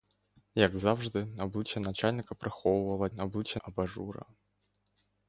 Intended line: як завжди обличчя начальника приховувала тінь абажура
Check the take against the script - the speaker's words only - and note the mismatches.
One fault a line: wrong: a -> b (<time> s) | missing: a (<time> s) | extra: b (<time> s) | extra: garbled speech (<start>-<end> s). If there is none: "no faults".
wrong: тінь -> обличчя (3.2 s)